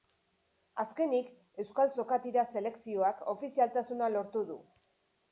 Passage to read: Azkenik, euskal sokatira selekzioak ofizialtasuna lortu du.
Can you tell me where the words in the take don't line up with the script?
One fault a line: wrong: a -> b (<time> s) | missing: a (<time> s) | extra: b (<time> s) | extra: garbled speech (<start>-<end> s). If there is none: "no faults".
no faults